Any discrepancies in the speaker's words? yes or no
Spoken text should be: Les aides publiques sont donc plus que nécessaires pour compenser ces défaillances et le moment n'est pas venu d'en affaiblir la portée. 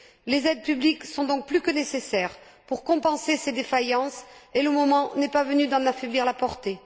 no